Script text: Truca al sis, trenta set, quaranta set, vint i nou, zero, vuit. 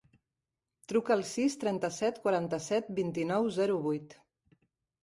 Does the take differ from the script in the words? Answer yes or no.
no